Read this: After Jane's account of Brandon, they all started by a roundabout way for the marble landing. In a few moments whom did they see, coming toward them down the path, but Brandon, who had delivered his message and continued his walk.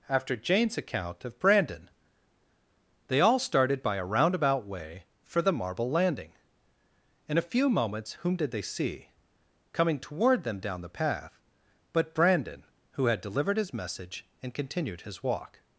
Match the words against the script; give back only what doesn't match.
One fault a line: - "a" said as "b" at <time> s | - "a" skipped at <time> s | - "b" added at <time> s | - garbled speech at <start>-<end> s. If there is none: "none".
none